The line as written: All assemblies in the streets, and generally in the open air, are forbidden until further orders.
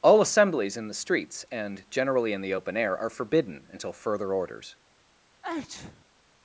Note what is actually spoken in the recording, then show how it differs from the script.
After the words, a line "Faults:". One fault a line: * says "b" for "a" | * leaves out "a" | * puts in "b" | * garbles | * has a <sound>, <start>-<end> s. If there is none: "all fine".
All assemblies in the streets, and generally in the open air, are forbidden until further orders.
Faults:
* has a sneeze, 5.4-6.1 s